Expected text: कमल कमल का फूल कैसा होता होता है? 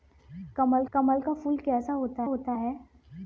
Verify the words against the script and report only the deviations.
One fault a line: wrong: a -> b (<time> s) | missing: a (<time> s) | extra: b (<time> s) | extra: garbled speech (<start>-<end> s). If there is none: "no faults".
no faults